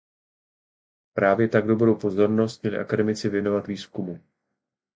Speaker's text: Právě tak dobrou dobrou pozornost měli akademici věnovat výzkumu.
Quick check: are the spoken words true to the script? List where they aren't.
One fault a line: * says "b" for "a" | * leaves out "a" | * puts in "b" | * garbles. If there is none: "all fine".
* leaves out "dobrou"